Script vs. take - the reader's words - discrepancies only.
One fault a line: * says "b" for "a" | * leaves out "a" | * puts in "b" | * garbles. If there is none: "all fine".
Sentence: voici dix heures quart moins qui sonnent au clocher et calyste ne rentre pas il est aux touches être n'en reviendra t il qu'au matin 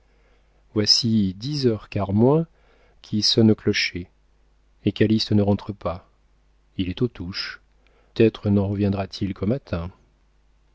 all fine